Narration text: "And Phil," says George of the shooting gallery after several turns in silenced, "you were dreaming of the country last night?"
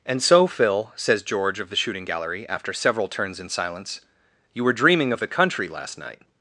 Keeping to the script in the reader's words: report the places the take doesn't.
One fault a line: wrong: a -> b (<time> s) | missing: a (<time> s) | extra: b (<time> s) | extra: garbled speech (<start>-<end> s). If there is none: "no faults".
extra: so (0.2 s)
wrong: silenced -> silence (3.5 s)